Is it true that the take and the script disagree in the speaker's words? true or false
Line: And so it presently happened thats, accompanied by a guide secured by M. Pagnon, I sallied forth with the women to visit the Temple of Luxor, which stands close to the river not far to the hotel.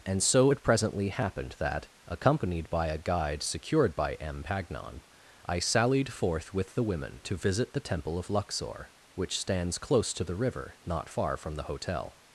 true